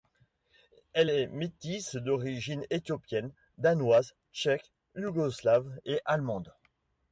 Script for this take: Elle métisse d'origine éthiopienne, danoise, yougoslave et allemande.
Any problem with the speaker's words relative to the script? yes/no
yes